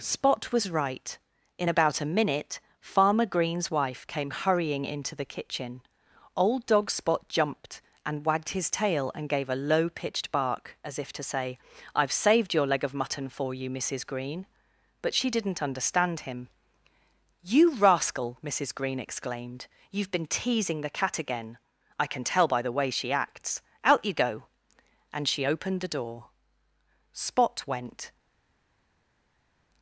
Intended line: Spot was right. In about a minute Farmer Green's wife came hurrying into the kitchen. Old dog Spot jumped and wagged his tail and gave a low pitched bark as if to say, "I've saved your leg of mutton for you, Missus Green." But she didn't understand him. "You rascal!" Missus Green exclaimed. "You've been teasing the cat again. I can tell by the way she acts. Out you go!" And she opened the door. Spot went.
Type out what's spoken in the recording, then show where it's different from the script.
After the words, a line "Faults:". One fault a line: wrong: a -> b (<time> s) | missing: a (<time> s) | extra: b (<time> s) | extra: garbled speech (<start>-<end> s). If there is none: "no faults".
Spot was right. In about a minute Farmer Green's wife came hurrying into the kitchen. Old dog Spot jumped and wagged his tail and gave a low pitched bark as if to say, "I've saved your leg of mutton for you, Missus Green." But she didn't understand him. "You rascal!" Missus Green exclaimed. "You've been teasing the cat again. I can tell by the way she acts. Out you go!" And she opened the door. Spot went.
Faults:
no faults